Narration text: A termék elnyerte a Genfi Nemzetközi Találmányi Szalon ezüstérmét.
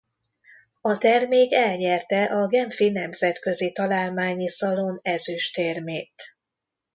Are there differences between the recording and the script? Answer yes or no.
no